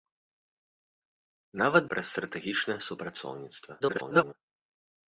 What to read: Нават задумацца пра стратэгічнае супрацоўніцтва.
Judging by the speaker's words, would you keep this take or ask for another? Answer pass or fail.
fail